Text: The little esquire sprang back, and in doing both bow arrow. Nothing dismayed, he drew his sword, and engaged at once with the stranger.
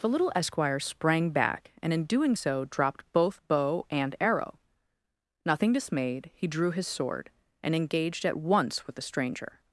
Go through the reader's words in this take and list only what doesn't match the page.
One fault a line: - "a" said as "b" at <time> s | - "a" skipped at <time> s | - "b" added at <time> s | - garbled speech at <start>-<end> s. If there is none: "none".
- "so dropped" added at 2.3 s
- "and" added at 3.9 s